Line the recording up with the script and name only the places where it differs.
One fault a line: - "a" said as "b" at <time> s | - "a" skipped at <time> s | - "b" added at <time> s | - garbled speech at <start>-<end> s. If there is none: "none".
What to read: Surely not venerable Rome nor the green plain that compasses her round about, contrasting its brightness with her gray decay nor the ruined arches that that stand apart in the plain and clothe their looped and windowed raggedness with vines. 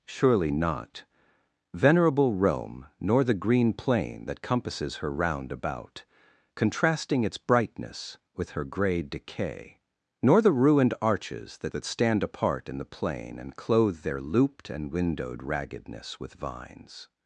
none